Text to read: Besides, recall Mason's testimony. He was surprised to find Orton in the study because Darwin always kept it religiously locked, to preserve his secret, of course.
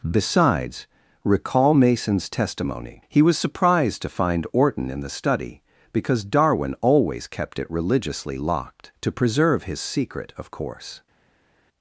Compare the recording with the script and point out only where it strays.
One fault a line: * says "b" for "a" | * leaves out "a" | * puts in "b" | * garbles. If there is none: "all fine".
all fine